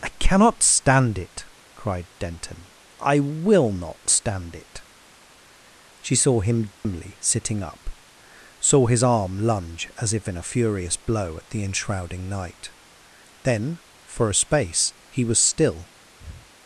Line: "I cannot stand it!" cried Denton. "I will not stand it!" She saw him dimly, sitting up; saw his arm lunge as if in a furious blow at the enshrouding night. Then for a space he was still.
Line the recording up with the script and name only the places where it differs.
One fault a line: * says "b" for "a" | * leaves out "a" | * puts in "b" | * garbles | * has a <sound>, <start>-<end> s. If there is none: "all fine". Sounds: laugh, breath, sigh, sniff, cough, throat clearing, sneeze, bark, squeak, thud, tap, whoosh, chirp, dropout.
* has a dropout, 6.7-6.8 s
* has a breath, 16.2-16.5 s